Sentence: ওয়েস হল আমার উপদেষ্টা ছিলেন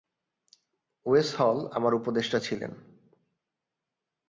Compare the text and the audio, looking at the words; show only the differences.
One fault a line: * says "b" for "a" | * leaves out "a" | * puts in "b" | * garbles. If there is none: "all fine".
all fine